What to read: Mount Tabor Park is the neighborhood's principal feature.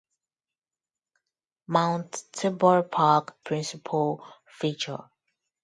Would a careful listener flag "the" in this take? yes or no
yes